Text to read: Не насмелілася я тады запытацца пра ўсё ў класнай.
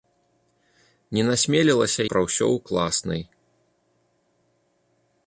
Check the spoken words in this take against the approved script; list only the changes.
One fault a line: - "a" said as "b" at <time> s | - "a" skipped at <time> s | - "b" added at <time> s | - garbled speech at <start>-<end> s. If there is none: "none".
- "я тады запытацца" skipped at 2.0 s